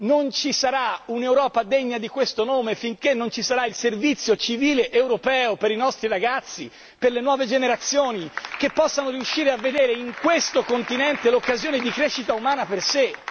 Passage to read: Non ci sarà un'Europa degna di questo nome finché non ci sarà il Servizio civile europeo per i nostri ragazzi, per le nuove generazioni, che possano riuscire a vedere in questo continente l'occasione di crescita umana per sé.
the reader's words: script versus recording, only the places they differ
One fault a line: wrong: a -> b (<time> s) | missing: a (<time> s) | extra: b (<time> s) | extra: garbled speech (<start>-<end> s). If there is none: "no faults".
no faults